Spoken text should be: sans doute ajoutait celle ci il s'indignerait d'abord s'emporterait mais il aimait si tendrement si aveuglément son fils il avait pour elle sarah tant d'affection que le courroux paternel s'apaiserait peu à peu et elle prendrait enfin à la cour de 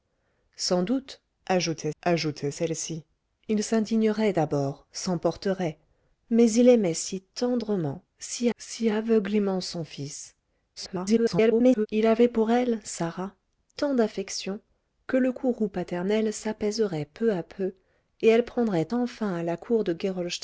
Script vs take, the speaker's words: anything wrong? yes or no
yes